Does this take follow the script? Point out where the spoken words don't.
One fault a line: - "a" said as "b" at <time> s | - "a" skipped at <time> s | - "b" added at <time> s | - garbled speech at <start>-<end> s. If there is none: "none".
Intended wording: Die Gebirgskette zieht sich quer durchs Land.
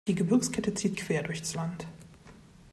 - "sich" skipped at 1.0 s